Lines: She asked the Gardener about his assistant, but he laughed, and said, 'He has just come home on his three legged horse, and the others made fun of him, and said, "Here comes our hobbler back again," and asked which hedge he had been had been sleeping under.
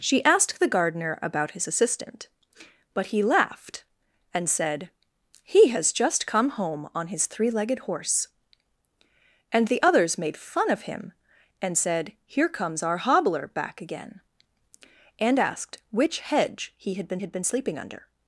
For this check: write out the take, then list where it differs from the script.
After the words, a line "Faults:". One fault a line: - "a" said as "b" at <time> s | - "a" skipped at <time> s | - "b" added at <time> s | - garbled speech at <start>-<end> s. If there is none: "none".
She asked the Gardener about his assistant, but he laughed, and said, 'He has just come home on his three legged horse, and the others made fun of him, and said, "Here comes our hobbler back again," and asked which hedge he had been had been sleeping under.
Faults:
none